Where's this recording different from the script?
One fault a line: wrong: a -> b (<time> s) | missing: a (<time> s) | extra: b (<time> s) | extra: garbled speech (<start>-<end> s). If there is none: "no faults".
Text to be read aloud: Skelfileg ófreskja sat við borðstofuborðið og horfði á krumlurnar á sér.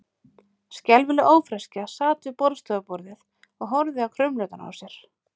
no faults